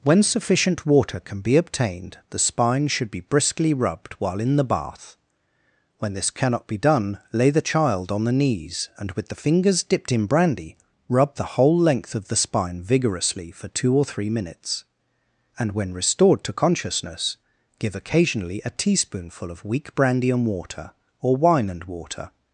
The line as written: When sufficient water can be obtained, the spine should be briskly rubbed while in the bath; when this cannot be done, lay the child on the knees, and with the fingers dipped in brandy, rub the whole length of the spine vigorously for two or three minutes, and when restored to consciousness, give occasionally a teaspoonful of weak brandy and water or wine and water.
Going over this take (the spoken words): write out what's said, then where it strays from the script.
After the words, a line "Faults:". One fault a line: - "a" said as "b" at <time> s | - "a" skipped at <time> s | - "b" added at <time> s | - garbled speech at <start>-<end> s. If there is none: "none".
When sufficient water can be obtained, the spine should be briskly rubbed while in the bath; when this cannot be done, lay the child on the knees, and with the fingers dipped in brandy, rub the whole length of the spine vigorously for two or three minutes, and when restored to consciousness, give occasionally a teaspoonful of weak brandy and water or wine and water.
Faults:
none